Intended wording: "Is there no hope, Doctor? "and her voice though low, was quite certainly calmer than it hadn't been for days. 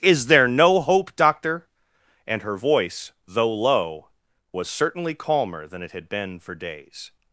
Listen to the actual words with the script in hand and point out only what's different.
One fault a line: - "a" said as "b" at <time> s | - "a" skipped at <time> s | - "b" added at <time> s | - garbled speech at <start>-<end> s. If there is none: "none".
- "quite" skipped at 4.7 s
- "hadn't" said as "had" at 5.9 s